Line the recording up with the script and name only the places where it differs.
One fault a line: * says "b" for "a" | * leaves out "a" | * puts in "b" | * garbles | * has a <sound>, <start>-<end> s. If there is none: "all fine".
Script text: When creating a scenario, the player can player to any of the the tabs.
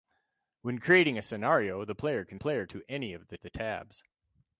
all fine